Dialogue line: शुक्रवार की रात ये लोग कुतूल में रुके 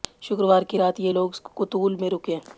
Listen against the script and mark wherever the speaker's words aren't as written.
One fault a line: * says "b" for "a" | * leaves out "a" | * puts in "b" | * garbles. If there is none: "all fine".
all fine